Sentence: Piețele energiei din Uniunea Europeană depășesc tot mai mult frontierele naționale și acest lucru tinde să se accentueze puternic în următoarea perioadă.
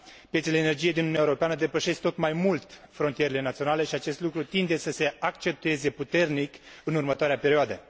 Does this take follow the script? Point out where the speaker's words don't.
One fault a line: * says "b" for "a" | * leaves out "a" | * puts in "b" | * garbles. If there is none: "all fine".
all fine